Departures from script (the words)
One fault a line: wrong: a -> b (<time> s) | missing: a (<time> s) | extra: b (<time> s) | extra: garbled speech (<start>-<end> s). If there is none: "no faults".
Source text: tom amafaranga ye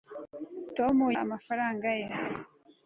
no faults